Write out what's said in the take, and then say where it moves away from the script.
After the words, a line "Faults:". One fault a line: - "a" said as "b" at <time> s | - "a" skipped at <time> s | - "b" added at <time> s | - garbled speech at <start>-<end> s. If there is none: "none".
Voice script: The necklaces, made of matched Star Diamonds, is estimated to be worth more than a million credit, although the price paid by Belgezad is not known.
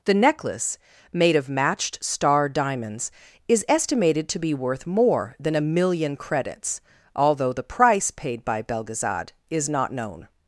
The necklace, made of matched Star Diamonds, is estimated to be worth more than a million credits, although the price paid by Belgezad is not known.
Faults:
- "necklaces" said as "necklace" at 0.1 s
- "credit" said as "credits" at 6.1 s